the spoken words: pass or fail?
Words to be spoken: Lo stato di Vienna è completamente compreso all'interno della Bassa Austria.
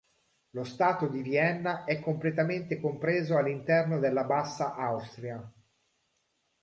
pass